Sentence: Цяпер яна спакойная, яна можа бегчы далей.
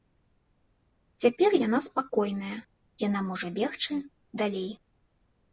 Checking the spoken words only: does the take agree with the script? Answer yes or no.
yes